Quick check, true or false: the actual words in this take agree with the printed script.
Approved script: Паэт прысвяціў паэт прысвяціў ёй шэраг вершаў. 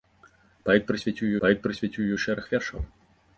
true